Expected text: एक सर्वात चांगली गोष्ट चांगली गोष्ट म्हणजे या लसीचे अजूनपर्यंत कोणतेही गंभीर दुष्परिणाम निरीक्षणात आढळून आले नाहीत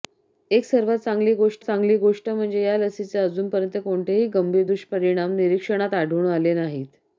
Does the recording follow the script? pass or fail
pass